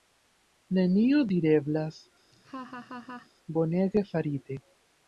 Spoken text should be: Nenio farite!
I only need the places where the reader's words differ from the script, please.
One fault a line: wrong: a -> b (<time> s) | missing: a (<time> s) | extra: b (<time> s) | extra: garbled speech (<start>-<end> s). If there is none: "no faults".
extra: direblas bonege (1.3 s)